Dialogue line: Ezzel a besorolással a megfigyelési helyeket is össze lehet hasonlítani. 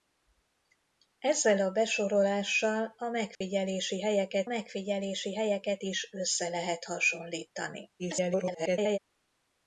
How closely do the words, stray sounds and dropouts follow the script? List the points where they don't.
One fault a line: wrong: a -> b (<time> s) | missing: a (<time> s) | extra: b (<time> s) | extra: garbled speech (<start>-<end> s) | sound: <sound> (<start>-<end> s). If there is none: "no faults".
sound: dropout (3.3-3.4 s)
extra: megfigyelési helyeket (4.5 s)
extra: garbled speech (8.0-9.0 s)